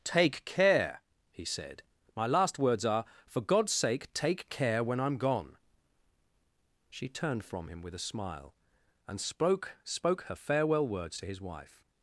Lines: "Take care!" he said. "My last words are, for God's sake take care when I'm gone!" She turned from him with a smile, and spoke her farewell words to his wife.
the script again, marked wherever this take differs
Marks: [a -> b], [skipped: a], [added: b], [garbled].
"Take care!" he said. "My last words are, for God's sake take care when I'm gone!" She turned from him with a smile, and spoke [added: spoke] her farewell words to his wife.